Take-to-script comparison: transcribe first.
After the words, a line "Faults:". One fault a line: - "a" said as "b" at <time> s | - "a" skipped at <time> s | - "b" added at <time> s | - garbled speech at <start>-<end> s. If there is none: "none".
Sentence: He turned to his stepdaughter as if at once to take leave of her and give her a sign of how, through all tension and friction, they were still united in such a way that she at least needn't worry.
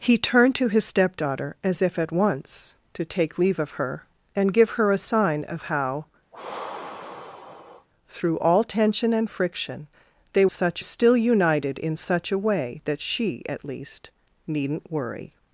He turned to his stepdaughter as if at once to take leave of her and give her a sign of how, through all tension and friction, they such still united in such a way that she at least needn't worry.
Faults:
- "were" said as "such" at 10.5 s